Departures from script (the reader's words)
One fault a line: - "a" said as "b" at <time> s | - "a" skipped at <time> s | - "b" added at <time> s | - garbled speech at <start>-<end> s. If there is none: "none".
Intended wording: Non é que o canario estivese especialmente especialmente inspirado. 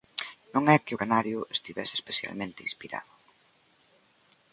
- "especialmente" skipped at 2.6 s